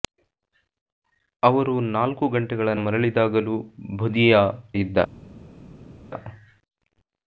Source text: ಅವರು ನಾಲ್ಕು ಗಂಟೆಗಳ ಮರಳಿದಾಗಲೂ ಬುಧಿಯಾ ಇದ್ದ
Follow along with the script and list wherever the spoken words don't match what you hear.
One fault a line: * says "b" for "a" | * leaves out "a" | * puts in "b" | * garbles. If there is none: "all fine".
all fine